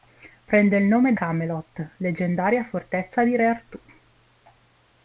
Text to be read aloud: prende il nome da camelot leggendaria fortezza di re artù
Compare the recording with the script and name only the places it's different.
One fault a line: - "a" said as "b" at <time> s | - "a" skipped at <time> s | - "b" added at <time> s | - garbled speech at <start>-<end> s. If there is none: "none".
- "da" skipped at 1.1 s